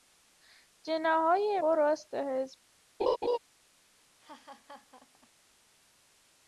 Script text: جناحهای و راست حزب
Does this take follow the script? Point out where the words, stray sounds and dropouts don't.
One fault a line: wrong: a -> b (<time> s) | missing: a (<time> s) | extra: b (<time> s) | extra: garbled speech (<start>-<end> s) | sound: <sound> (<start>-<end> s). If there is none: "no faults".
sound: laugh (3.0-3.4 s)
sound: laugh (4.2-5.3 s)